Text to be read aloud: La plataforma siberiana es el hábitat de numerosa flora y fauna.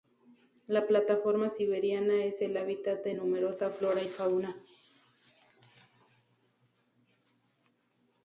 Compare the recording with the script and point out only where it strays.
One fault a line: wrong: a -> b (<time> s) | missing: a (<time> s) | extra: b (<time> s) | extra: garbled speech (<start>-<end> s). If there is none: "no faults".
no faults